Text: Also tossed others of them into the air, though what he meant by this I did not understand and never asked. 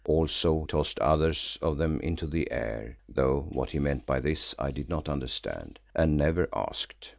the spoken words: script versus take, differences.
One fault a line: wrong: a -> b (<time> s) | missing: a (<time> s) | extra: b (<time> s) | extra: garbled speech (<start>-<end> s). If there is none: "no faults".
no faults